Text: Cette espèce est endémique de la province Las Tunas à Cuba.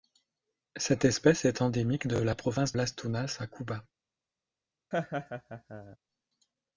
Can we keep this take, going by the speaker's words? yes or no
yes